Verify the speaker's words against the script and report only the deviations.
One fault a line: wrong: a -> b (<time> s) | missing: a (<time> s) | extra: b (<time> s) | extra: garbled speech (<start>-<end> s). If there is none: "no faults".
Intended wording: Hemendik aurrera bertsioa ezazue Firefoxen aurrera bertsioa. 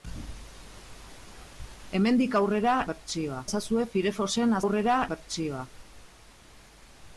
no faults